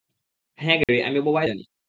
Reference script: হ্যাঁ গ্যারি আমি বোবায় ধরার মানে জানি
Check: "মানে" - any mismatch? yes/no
yes